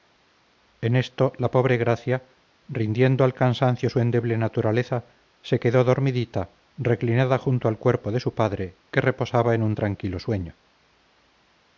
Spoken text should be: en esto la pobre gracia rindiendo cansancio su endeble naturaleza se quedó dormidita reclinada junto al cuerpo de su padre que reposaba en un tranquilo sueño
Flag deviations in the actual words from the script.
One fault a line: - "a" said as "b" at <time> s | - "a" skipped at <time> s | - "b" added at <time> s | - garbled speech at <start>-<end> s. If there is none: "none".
- "al" added at 3.2 s